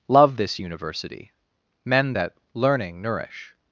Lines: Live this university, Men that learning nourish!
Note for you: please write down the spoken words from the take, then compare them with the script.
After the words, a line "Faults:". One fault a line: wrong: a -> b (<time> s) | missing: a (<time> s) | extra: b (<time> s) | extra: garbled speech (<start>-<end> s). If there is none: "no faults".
Love this university, Men that learning nourish!
Faults:
wrong: Live -> Love (0.1 s)